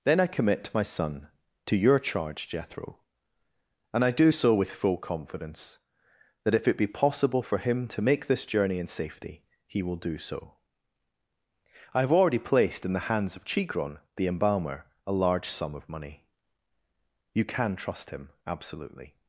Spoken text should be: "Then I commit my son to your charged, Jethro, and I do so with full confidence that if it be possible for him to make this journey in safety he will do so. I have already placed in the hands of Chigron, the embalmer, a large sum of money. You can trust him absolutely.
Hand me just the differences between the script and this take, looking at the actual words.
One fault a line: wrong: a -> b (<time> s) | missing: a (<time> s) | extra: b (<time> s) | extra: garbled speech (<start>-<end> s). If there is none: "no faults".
wrong: charged -> charge (2.0 s)